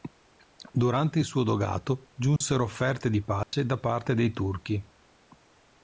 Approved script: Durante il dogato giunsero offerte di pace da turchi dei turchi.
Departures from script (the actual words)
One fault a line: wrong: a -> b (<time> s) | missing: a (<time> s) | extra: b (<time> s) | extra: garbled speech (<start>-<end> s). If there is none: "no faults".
extra: suo (1.3 s)
wrong: turchi -> parte (3.8 s)